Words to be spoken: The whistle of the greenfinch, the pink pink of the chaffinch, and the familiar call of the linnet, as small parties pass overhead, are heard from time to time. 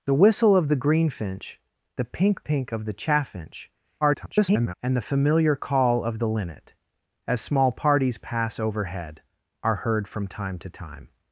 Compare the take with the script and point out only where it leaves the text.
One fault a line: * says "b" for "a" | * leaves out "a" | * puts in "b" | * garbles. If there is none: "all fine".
* garbles